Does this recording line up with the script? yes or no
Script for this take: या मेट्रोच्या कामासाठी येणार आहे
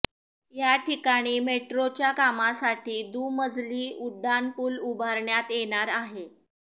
no